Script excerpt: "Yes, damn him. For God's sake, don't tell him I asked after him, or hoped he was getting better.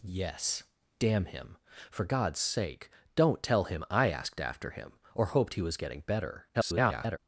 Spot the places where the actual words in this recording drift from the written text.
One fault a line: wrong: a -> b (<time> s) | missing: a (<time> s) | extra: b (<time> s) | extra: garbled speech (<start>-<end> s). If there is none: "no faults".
extra: garbled speech (6.5-7.2 s)